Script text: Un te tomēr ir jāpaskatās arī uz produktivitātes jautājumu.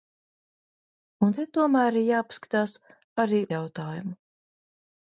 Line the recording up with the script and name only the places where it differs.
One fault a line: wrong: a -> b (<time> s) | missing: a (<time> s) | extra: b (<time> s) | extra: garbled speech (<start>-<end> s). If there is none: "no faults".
missing: uz produktivitātes (3.4 s)